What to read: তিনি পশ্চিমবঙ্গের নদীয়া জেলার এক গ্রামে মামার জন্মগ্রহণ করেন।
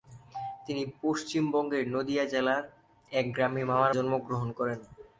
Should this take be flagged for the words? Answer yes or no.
no